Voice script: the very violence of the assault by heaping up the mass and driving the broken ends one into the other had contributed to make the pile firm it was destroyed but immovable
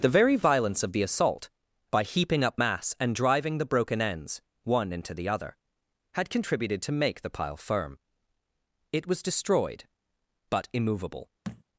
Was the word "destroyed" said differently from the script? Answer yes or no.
no